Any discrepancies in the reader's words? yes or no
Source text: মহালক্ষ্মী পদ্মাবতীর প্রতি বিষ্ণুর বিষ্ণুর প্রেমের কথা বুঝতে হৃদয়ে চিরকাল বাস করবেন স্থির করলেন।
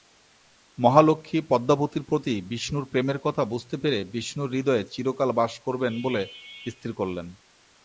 yes